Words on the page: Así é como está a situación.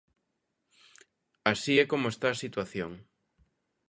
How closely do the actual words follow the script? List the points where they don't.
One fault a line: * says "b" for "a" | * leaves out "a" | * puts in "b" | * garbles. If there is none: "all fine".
all fine